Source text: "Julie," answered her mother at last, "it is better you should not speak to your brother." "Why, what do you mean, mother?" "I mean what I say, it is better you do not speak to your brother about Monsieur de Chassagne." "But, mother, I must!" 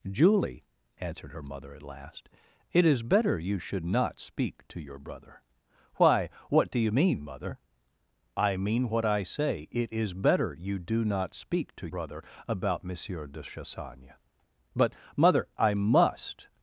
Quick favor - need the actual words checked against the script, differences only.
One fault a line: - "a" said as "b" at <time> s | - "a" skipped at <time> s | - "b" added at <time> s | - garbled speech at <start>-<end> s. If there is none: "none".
- "your" skipped at 11.9 s